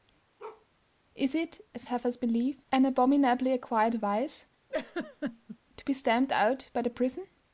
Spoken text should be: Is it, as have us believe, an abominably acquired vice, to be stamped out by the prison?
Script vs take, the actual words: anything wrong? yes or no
no